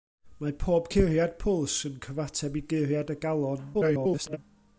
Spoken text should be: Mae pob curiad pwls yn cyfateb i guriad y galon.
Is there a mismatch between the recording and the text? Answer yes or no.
yes